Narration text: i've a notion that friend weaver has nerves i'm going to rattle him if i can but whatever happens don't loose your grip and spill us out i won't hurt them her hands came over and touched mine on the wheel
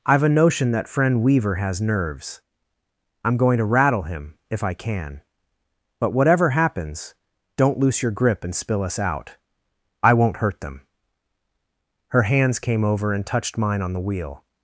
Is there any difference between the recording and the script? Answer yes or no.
no